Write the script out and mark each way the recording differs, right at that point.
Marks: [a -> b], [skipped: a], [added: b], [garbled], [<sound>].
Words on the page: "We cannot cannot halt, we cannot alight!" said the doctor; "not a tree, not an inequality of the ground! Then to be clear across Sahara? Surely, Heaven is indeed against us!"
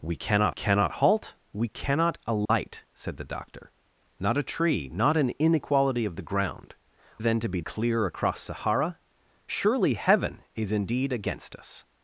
"We cannot cannot halt, we cannot alight!" [dropout] said the doctor; "not a tree, not an inequality of the ground! Then to be clear across Sahara? Surely, Heaven is indeed against us!"